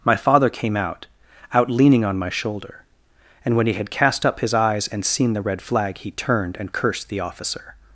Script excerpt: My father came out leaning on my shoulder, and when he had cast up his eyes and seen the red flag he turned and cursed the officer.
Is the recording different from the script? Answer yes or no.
yes